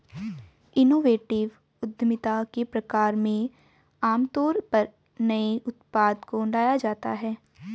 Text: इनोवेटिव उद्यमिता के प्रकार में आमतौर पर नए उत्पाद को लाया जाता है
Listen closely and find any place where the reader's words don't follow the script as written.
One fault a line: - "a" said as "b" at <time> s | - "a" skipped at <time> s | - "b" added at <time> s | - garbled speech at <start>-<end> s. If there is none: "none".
none